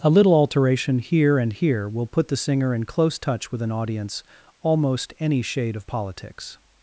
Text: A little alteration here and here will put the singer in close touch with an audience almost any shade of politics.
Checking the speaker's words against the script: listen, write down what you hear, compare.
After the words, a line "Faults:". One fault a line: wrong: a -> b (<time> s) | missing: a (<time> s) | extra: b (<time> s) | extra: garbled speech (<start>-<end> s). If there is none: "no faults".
A little alteration here and here will put the singer in close touch with an audience almost any shade of politics.
Faults:
no faults